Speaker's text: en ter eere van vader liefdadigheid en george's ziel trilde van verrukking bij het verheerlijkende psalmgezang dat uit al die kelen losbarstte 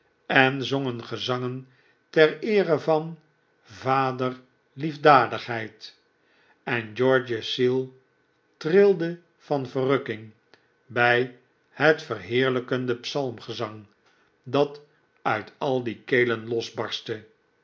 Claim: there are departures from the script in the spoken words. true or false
true